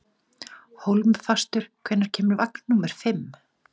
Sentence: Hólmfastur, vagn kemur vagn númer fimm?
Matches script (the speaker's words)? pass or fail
fail